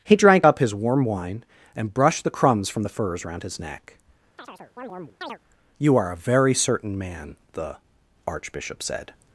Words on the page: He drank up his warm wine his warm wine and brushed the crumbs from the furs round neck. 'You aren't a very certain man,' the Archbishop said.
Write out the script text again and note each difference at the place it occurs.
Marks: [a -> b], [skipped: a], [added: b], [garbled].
He drank up his warm wine [skipped: his warm wine] and brushed the crumbs from the furs round [added: his] neck. 'You [aren't -> are] a very certain man,' the Archbishop said.